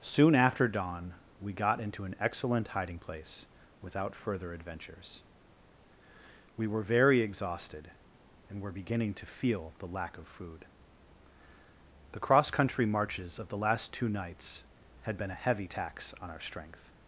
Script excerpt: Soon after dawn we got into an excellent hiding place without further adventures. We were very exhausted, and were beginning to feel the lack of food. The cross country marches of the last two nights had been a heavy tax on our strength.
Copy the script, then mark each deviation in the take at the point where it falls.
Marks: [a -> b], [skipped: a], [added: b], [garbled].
Soon after dawn we got into an excellent hiding place without further adventures. We were very exhausted, and were beginning to feel the lack of food. The cross country marches of the last two nights had been a heavy tax on our strength.